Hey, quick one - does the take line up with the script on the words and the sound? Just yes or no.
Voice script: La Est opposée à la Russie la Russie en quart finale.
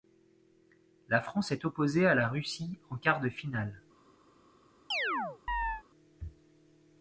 no